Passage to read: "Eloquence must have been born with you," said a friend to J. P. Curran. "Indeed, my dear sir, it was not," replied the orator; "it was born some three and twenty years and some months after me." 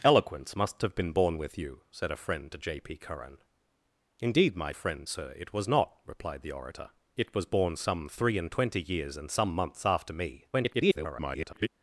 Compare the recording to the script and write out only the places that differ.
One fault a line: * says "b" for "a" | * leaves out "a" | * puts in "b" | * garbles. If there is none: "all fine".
* says "friend" for "dear"
* garbles